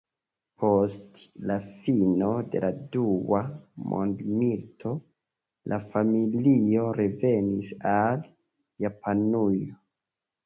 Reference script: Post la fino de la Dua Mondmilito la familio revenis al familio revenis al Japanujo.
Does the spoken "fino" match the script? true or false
true